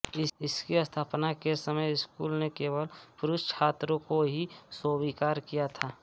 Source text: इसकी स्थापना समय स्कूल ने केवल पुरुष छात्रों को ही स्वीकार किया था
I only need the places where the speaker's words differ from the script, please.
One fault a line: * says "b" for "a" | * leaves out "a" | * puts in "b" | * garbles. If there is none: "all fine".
* puts in "के"